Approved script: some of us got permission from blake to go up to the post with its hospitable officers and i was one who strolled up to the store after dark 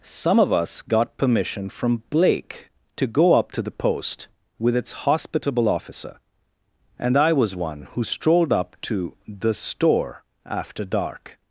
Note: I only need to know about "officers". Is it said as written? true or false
false